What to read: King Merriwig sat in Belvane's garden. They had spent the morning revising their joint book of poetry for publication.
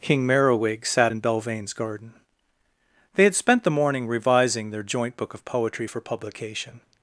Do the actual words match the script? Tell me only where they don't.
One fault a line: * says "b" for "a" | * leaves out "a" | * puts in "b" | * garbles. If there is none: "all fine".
all fine